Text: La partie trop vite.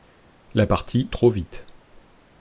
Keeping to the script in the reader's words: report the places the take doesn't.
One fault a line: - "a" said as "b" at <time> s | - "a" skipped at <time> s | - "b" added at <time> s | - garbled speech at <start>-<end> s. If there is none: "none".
none